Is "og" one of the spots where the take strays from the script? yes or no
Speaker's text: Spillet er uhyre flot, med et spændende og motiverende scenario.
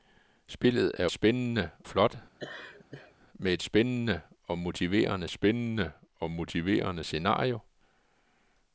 no